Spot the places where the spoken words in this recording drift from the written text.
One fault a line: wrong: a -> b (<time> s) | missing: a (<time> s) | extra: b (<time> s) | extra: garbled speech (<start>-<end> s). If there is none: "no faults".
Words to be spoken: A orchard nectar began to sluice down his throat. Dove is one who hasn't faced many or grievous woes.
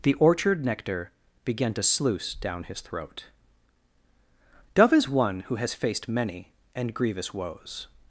wrong: A -> The (0.0 s)
wrong: hasn't -> has (5.5 s)
wrong: or -> and (6.7 s)